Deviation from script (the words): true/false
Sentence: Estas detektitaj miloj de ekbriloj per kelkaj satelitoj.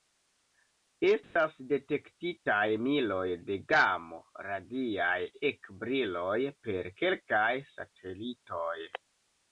true